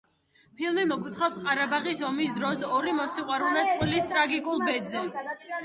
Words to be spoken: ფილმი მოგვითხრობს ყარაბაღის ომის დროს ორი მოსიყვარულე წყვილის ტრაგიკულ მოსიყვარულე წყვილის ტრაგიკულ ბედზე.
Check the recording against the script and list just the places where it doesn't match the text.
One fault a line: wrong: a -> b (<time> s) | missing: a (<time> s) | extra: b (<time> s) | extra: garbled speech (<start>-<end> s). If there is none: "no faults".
missing: მოსიყვარულე წყვილის ტრაგიკულ (4.7 s)